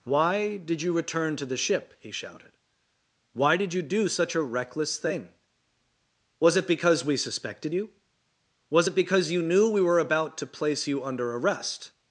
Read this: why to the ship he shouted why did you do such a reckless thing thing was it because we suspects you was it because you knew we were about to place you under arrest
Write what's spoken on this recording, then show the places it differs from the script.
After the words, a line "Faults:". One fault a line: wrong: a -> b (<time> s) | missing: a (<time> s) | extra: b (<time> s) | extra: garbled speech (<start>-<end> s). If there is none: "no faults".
why did you return to the ship he shouted why did you do such a reckless thing was it because we suspected you was it because you knew we were about to place you under arrest
Faults:
extra: did you return (0.6 s)
missing: thing (5.3 s)
wrong: suspects -> suspected (7.2 s)